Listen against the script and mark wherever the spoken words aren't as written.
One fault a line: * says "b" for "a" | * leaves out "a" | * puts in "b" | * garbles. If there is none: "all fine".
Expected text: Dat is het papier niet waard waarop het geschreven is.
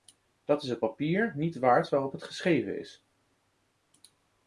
all fine